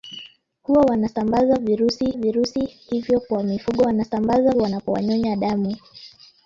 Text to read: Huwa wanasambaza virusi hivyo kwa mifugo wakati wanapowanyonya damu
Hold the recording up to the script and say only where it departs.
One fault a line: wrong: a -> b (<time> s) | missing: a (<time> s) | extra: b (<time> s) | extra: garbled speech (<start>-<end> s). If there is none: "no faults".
extra: virusi (2.1 s)
wrong: wakati -> wanasambaza (3.8 s)